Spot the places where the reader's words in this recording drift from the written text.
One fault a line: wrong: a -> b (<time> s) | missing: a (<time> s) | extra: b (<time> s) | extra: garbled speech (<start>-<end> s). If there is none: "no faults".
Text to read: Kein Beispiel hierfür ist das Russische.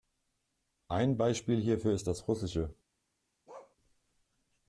wrong: Kein -> Ein (0.9 s)